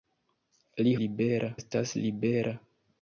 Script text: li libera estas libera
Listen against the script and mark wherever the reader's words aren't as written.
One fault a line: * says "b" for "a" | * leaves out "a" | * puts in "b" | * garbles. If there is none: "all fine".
all fine